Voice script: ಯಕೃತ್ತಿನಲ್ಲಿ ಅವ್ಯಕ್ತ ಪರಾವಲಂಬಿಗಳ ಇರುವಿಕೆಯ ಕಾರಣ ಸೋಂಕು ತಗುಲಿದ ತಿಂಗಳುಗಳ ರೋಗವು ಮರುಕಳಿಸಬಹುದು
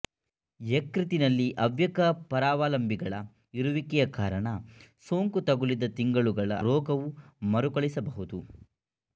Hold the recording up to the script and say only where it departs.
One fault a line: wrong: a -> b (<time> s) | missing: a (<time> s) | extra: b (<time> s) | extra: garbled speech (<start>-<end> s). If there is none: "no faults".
no faults